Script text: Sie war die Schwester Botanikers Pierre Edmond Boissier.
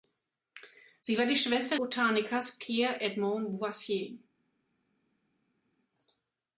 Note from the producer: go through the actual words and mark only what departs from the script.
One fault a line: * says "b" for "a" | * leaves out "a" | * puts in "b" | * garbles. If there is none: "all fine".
all fine